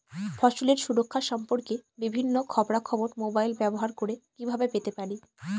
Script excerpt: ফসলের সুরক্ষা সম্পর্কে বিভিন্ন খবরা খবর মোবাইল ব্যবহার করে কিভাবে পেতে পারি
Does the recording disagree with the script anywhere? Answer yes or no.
no